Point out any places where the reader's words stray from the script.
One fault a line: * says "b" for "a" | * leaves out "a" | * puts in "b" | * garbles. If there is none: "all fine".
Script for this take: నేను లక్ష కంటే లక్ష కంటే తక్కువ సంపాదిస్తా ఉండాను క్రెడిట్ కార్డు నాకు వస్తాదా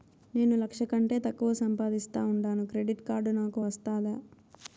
* leaves out "లక్ష కంటే"